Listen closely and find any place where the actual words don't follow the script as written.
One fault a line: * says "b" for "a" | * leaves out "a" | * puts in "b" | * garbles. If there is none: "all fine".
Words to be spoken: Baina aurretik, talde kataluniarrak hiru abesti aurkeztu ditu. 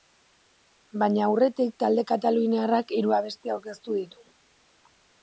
all fine